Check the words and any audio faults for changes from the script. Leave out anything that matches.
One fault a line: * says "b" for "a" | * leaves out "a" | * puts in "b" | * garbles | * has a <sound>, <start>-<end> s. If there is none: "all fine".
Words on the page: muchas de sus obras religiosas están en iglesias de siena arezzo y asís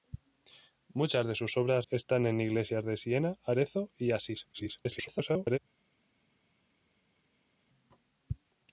* leaves out "religiosas"
* garbles